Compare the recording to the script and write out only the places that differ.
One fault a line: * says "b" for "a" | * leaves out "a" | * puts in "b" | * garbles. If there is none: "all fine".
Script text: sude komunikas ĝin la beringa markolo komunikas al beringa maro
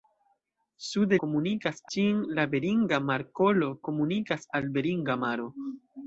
all fine